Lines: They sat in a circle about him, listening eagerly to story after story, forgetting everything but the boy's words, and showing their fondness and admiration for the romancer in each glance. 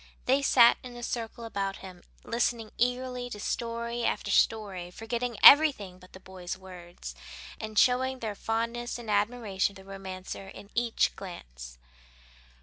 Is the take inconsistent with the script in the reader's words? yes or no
yes